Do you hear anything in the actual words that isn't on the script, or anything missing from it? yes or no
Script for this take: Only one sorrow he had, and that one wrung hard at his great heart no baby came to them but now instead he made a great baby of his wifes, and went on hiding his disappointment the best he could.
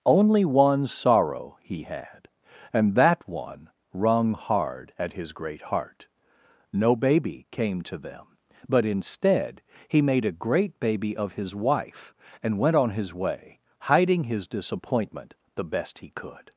yes